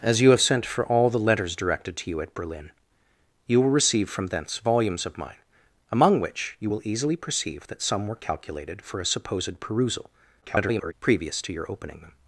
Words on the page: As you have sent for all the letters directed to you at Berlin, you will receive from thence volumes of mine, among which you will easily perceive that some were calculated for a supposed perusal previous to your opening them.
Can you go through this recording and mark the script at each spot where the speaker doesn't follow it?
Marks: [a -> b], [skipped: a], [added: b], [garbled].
As you have sent for all the letters directed to you at Berlin, you will receive from thence volumes of mine, among which you will easily perceive that some were calculated for a supposed perusal [garbled] previous to your opening them.